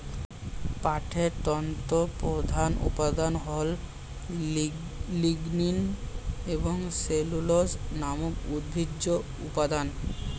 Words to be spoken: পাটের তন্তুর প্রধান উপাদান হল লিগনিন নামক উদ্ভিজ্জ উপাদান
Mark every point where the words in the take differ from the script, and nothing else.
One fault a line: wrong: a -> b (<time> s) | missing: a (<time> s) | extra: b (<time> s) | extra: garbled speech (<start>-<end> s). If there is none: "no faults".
extra: এবং সেলুলোজ (6.5 s)